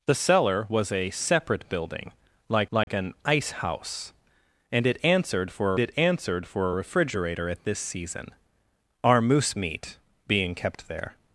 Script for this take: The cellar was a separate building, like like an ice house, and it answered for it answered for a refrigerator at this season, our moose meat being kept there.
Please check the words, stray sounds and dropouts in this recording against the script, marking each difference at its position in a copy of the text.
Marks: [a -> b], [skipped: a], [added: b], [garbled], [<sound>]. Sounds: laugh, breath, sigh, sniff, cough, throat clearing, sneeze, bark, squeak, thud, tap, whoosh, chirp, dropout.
The cellar was a separate building, like like [dropout] an ice house, and it answered for it answered for a refrigerator at this season, our moose meat being kept there.